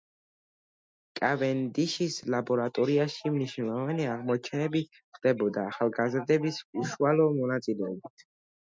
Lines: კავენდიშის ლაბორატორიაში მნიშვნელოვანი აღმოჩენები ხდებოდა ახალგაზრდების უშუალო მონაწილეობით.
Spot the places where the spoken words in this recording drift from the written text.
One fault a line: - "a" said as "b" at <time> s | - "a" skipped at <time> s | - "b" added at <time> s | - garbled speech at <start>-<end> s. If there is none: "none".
none